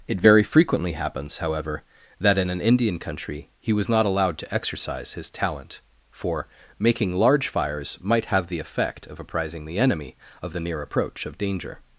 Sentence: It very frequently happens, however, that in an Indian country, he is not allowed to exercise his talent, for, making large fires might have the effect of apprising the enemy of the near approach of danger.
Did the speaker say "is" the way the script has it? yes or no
no